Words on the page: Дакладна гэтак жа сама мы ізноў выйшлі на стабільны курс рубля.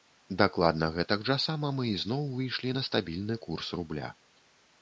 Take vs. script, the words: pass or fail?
pass